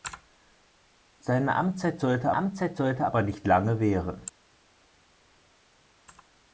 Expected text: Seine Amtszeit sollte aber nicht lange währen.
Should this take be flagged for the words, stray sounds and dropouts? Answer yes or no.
yes